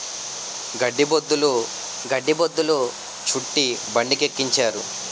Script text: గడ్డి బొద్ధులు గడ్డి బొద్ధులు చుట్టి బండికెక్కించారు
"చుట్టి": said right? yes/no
yes